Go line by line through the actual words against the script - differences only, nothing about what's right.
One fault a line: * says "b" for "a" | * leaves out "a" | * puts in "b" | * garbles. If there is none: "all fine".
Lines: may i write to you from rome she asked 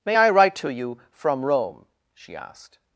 all fine